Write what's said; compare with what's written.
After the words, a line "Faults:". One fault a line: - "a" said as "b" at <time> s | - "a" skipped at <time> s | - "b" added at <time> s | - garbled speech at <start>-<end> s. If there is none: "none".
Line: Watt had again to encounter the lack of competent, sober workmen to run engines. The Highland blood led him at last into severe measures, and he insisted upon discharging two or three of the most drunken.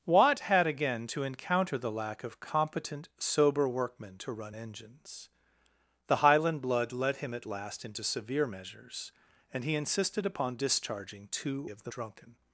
Watt had again to encounter the lack of competent, sober workmen to run engines. The Highland blood led him at last into severe measures, and he insisted upon discharging two of the drunken.
Faults:
- "or three" skipped at 11.7 s
- "most" skipped at 11.9 s